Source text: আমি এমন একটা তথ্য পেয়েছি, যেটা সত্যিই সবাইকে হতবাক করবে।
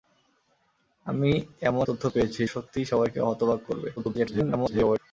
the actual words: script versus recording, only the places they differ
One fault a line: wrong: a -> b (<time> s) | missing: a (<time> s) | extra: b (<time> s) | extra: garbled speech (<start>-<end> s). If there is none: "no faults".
missing: একটা (1.9 s)
missing: যেটা (2.4 s)
extra: garbled speech (4.0-5.0 s)